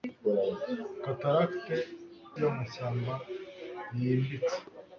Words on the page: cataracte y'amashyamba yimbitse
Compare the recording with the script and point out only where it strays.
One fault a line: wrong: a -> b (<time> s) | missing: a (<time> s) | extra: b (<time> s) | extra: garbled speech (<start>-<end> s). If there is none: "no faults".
no faults